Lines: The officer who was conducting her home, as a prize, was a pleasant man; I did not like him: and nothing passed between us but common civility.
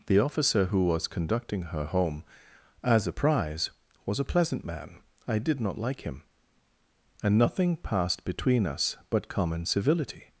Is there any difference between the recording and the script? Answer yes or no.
no